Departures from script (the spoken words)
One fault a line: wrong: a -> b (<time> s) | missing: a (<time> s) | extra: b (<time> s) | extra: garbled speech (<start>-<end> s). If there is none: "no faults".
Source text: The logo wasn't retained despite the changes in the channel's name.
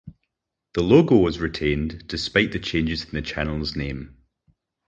wrong: wasn't -> was (1.2 s)